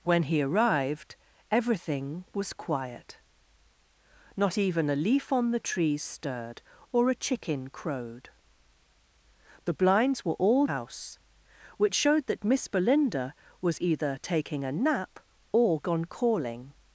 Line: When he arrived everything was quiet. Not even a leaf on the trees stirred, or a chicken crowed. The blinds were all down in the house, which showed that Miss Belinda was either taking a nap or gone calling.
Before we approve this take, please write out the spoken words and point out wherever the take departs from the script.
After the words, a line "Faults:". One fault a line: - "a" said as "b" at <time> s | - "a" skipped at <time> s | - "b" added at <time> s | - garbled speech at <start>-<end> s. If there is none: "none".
When he arrived everything was quiet. Not even a leaf on the trees stirred, or a chicken crowed. The blinds were all house, which showed that Miss Belinda was either taking a nap or gone calling.
Faults:
- "down in the" skipped at 10.7 s